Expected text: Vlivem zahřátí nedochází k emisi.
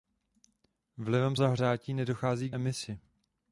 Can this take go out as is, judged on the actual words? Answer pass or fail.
pass